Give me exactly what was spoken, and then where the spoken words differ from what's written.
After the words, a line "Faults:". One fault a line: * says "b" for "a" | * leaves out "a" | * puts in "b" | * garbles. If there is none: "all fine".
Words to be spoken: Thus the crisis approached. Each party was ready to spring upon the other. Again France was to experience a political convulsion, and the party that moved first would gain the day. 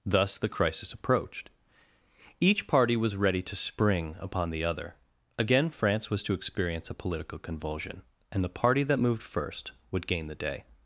Thus the crisis approached. Each party was ready to spring upon the other. Again France was to experience a political convulsion, and the party that moved first would gain the day.
Faults:
all fine